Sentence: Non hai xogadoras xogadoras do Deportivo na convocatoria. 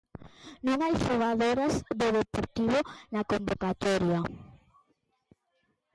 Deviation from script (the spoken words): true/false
true